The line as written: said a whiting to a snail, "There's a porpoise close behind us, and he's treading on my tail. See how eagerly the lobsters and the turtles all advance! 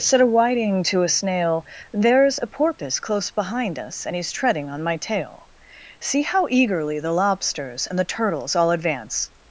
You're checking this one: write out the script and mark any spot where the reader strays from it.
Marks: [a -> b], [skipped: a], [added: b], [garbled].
said a whiting to a snail, "There's a porpoise close behind us, and he's treading on my tail. See how eagerly the lobsters and the turtles all advance!